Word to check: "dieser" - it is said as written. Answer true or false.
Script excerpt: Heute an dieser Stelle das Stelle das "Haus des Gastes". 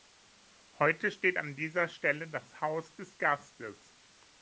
true